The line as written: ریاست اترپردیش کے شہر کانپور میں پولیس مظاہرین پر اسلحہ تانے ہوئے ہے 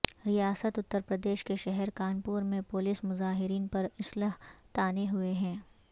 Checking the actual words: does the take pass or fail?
pass